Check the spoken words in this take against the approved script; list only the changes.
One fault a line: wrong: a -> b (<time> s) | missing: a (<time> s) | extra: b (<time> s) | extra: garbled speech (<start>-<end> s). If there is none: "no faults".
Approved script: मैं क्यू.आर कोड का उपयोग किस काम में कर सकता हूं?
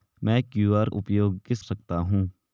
missing: कोड का (0.9 s)
missing: काम में कर (1.6 s)